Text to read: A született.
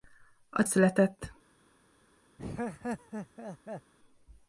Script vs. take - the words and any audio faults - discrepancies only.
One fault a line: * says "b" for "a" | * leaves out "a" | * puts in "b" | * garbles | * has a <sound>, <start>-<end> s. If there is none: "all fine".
* has a laugh, 2.4-3.9 s